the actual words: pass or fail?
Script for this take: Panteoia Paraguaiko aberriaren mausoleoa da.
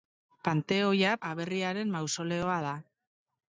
fail